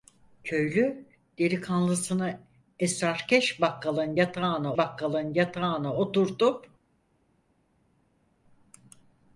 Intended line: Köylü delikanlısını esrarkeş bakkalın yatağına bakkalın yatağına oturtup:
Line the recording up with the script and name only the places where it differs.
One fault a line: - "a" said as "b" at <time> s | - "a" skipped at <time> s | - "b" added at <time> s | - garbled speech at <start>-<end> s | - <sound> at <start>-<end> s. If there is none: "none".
none